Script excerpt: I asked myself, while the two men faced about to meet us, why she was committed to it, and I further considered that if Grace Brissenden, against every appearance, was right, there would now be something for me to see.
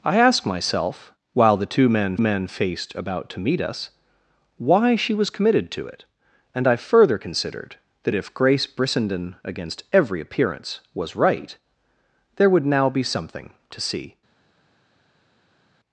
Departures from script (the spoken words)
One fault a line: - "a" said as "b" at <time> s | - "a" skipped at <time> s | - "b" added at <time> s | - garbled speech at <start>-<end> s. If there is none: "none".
- "men" added at 2.2 s
- "for me" skipped at 13.5 s